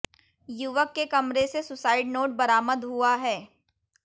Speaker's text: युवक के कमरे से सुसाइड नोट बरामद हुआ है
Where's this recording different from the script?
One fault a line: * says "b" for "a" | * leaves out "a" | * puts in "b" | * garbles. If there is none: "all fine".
all fine